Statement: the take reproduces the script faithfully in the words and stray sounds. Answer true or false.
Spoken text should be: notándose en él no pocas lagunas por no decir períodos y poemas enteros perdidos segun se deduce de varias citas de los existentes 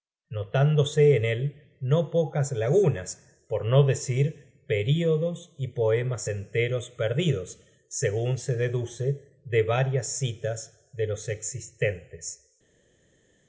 true